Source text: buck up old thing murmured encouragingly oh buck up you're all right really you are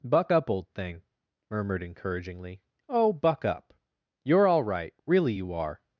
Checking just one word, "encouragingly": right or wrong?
right